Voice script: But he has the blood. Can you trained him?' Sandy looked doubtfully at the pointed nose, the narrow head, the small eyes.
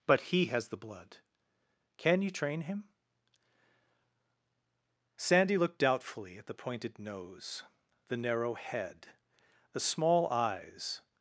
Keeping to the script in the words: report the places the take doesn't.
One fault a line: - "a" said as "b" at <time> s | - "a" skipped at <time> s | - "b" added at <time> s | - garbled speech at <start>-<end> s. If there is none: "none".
- "trained" said as "train" at 2.3 s